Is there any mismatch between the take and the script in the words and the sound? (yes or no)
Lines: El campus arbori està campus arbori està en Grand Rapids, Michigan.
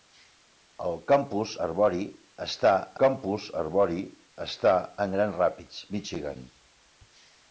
no